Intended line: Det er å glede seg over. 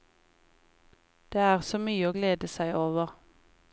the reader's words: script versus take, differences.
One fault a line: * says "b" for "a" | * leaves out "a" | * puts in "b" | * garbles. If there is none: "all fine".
* puts in "så mye"